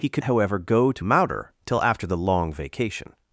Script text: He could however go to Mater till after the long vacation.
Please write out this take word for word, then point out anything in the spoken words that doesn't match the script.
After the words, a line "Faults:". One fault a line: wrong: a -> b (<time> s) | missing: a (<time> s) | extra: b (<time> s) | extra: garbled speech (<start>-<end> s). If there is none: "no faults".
He could however go to Mater till after the long vacation.
Faults:
no faults